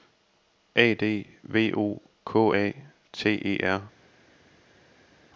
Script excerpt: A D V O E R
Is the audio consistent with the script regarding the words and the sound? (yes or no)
no